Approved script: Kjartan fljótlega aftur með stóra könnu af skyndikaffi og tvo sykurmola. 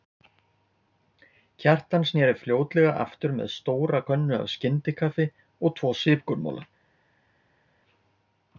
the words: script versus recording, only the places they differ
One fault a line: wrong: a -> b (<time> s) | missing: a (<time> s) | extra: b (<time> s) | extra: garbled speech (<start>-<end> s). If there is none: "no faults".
extra: sneri (2.1 s)